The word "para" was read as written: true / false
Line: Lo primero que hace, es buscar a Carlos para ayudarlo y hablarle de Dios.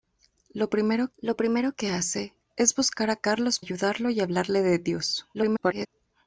false